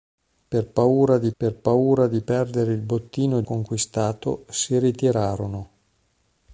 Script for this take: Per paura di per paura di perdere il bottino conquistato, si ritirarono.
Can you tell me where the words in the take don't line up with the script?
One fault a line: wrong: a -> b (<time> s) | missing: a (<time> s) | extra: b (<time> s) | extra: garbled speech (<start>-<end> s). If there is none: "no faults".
no faults